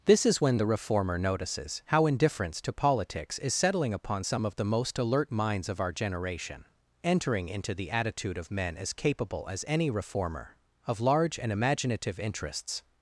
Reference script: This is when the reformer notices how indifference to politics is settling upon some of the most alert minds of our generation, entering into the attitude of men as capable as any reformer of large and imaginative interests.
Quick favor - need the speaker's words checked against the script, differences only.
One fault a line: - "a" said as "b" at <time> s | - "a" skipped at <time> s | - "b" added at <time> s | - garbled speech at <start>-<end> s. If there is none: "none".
none